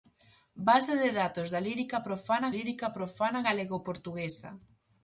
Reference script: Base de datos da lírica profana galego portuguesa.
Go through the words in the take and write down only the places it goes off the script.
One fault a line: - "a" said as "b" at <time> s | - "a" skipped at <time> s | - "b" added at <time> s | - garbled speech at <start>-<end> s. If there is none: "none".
- "lírica profana" added at 2.6 s